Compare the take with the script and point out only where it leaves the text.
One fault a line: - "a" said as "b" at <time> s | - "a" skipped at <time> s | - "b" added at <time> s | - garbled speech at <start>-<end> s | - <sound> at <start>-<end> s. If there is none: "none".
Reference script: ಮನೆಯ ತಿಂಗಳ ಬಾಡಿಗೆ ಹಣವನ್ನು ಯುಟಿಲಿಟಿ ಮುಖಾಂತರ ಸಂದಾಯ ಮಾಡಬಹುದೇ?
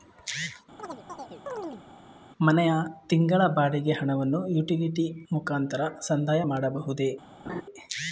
- chirp at 0.8-1.8 s
- laugh at 7.4-7.6 s